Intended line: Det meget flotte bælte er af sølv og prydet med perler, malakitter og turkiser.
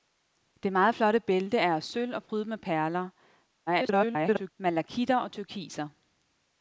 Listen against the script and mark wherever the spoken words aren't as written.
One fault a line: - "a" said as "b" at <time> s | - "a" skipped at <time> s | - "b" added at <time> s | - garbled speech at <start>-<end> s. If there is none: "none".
- garbled speech at 3.7-4.5 s